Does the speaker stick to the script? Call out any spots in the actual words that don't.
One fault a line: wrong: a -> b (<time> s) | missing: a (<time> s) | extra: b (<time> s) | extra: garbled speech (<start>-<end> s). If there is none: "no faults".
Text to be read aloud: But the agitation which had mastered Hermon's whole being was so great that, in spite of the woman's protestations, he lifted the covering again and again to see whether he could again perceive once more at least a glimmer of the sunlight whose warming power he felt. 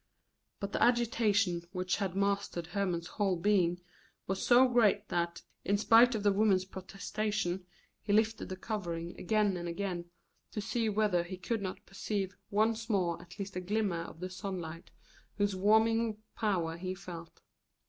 wrong: again -> not (11.6 s)